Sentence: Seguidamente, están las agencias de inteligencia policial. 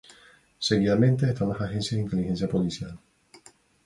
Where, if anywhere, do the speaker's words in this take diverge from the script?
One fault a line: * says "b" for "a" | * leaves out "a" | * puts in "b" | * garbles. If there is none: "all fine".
all fine